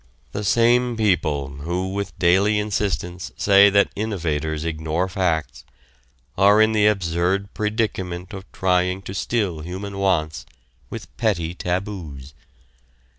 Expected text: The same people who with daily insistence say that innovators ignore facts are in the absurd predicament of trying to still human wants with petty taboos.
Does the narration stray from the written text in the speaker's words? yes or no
no